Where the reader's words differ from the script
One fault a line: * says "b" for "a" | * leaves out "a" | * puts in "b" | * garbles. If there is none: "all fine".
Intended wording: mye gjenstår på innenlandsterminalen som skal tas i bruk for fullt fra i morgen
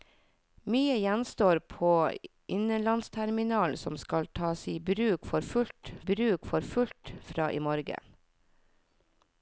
* puts in "bruk for fullt"